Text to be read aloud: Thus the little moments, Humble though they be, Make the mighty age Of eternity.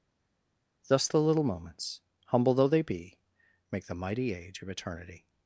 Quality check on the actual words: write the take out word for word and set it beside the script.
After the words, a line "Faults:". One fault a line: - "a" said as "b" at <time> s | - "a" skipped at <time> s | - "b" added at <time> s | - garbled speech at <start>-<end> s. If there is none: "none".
Thus the little moments, Humble though they be, Make the mighty age Of eternity.
Faults:
none